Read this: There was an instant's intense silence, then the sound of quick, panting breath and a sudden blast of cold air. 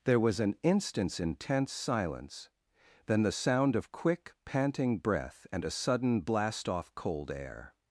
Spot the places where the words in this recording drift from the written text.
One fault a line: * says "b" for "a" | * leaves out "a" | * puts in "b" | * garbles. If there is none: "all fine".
* says "off" for "of"